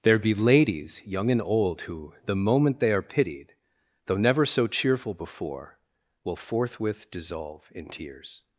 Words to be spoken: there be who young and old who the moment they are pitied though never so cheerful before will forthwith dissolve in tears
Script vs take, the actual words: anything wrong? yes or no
yes